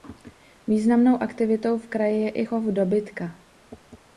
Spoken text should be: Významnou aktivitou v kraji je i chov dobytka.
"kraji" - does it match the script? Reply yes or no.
yes